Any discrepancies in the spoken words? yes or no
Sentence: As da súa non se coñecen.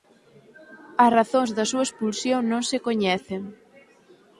yes